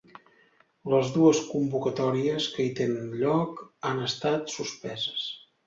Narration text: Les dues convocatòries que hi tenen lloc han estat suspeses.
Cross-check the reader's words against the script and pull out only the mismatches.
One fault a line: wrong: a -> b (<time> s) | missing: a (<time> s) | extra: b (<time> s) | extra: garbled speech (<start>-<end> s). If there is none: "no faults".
no faults